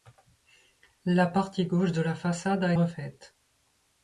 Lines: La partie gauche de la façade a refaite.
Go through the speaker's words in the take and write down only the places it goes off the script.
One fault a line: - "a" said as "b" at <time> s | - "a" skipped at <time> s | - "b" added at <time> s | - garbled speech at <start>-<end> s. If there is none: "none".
none